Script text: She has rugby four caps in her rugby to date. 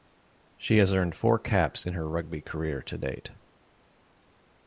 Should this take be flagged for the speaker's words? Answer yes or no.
yes